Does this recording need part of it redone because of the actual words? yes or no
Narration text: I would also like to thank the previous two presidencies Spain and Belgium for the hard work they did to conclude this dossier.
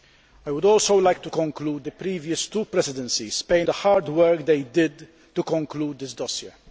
yes